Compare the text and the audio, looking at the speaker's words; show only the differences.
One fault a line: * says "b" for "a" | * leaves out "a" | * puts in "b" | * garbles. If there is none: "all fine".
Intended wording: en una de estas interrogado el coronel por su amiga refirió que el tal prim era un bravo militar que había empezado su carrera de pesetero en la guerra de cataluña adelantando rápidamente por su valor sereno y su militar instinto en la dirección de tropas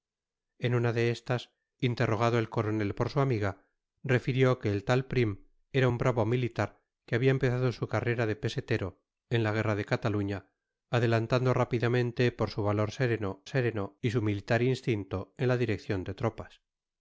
* puts in "sereno"